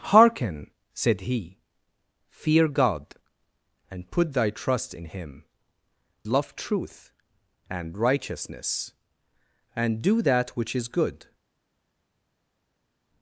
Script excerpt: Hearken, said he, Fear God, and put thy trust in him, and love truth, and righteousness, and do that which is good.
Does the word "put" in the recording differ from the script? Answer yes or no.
no